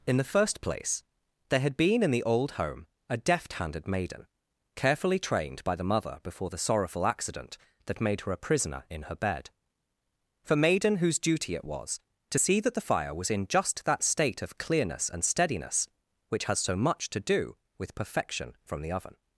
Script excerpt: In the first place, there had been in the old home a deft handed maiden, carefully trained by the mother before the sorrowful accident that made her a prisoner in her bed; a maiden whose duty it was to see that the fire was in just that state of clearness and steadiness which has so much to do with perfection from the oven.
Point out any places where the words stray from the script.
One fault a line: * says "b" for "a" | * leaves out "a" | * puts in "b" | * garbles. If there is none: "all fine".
* says "for" for "a"